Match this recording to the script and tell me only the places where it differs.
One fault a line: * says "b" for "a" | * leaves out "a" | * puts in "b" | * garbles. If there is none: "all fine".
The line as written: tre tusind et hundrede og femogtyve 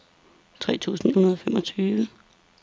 * leaves out "et"